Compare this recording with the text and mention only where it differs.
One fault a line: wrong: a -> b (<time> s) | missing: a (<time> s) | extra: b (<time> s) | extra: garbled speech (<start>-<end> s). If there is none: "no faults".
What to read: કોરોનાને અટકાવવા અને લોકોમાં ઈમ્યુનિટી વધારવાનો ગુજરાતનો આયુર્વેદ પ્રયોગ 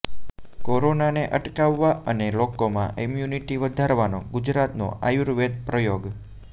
no faults